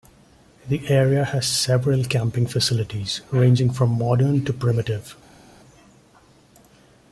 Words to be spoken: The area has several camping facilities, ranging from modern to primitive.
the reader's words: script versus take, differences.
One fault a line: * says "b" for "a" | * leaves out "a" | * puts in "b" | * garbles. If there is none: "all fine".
all fine